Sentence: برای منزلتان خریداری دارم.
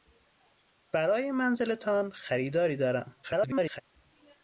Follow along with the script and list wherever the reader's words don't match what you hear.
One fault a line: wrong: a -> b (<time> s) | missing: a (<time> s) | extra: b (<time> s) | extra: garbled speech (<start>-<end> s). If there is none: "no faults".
extra: garbled speech (3.2-3.8 s)